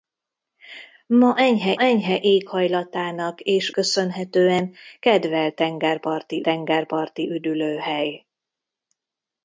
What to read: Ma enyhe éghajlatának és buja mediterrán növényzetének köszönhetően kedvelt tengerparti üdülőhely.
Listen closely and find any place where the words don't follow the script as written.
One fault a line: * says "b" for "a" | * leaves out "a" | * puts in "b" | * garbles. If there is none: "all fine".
* puts in "enyhe"
* leaves out "buja mediterrán növényzetének"
* puts in "tengerparti"